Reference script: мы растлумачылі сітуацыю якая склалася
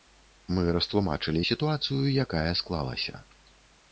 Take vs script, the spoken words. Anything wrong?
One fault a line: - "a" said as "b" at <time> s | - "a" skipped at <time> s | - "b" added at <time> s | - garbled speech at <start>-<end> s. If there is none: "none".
none